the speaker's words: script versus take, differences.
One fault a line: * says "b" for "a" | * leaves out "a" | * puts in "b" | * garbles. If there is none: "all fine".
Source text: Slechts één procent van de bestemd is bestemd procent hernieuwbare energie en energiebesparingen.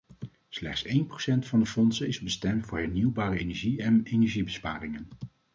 * says "fondsen" for "bestemd"
* says "voor" for "procent"